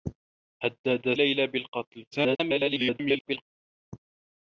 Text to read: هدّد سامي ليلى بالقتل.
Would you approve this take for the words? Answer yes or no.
no